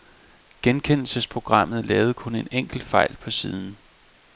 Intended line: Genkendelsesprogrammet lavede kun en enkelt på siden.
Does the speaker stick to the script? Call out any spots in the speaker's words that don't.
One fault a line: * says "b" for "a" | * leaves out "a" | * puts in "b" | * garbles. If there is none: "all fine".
* puts in "fejl"